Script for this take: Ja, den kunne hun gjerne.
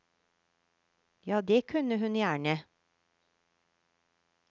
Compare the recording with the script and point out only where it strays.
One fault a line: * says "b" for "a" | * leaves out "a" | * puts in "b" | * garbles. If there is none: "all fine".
* says "det" for "den"